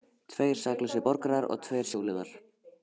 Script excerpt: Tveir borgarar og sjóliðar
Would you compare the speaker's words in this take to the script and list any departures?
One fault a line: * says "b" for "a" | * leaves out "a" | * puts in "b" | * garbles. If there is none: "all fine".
* puts in "saklausir"
* puts in "tveir"